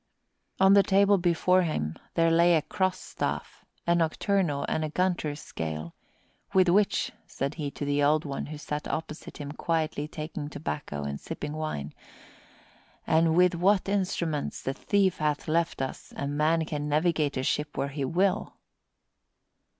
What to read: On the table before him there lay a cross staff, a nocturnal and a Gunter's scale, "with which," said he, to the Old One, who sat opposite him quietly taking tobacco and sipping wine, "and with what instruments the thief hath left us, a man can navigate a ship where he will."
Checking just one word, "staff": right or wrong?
right